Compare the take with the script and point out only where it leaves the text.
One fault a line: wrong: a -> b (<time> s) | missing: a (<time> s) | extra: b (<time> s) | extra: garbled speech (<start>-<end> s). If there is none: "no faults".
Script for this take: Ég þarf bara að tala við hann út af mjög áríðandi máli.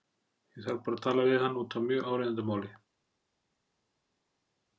no faults